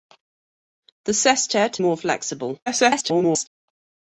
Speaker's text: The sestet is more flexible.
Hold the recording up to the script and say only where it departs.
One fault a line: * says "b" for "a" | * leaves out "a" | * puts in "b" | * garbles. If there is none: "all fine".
* leaves out "is"
* garbles